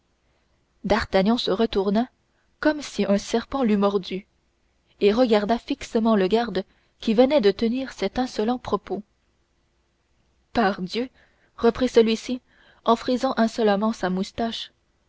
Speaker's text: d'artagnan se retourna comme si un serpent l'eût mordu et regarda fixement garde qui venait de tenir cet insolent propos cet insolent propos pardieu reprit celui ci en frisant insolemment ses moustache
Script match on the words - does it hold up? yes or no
no